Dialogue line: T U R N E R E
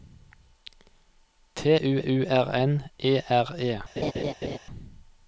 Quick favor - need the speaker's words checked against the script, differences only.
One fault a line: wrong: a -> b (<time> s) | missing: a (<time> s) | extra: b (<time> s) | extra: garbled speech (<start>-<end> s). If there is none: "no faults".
extra: U (2.0 s)